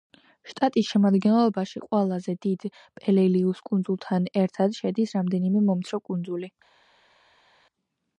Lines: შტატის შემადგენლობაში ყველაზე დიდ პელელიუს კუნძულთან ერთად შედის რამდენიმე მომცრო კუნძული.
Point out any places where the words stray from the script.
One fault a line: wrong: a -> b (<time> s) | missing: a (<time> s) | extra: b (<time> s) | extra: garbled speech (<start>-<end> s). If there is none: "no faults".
no faults